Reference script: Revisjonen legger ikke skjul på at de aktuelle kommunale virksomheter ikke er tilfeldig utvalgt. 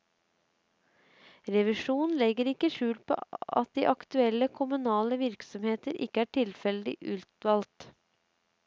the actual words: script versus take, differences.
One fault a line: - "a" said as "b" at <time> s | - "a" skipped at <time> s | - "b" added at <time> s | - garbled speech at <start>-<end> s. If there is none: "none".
none